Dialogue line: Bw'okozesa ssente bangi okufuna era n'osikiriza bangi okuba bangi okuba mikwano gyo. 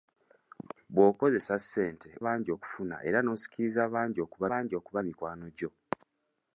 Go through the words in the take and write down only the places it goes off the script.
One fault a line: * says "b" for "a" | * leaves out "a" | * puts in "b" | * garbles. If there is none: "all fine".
all fine